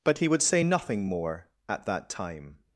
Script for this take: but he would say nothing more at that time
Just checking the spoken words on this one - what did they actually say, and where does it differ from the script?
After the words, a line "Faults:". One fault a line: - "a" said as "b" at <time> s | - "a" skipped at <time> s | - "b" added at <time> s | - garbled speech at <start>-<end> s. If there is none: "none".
but he would say nothing more at that time
Faults:
none